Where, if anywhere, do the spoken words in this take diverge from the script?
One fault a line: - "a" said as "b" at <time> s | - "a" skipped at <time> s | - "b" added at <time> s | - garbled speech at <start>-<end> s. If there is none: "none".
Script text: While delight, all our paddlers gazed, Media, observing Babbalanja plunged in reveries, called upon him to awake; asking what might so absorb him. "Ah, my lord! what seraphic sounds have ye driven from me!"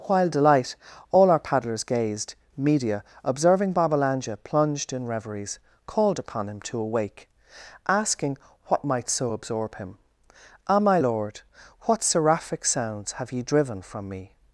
none